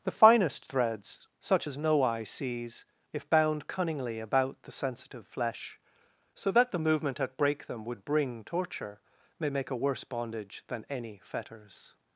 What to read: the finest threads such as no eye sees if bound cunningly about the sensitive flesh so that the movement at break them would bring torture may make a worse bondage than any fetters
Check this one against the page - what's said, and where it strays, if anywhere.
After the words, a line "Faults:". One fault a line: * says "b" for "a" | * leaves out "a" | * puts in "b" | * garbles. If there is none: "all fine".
the finest threads such as no eye sees if bound cunningly about the sensitive flesh so that the movement at break them would bring torture may make a worse bondage than any fetters
Faults:
all fine